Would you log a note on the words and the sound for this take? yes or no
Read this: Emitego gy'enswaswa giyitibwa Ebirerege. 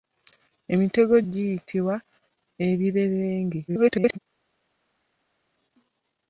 yes